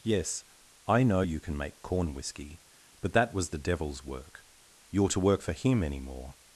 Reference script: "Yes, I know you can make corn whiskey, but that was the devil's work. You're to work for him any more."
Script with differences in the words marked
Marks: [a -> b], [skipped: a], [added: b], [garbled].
"Yes, I know you can make corn whiskey, but that was the devil's work. You're to work for him any more."